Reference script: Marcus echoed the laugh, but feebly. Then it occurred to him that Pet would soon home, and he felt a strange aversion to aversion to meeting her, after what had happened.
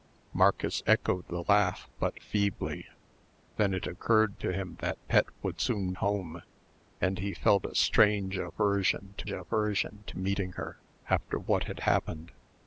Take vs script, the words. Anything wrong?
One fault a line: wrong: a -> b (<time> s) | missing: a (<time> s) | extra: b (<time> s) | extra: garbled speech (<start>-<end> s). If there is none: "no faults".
no faults